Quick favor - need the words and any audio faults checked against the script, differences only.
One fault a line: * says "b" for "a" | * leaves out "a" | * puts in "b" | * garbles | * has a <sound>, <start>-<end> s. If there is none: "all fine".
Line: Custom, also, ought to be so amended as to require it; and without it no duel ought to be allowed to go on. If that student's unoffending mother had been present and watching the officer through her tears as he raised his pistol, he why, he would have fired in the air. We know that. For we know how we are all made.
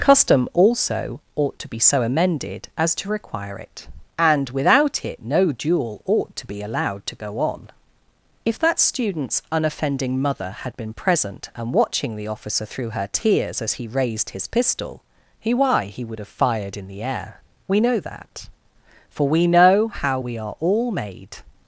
all fine